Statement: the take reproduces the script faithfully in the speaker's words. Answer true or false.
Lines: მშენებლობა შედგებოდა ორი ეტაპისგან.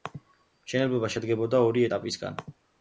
true